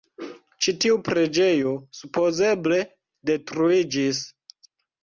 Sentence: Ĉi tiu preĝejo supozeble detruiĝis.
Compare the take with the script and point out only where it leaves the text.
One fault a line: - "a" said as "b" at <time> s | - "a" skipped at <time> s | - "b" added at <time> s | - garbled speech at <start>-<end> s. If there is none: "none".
none